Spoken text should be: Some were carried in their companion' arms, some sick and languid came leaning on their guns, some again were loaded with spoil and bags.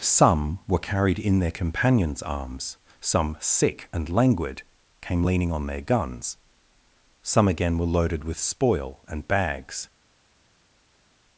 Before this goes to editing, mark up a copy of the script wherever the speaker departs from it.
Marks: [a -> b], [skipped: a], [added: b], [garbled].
Some were carried in their [companion' -> companions] arms, some sick and languid came leaning on their guns, some again were loaded with spoil and bags.